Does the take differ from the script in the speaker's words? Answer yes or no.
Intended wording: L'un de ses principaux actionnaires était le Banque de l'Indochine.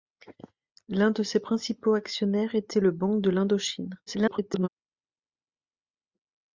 yes